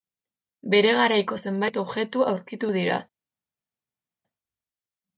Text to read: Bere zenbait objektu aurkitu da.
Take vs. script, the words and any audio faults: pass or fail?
fail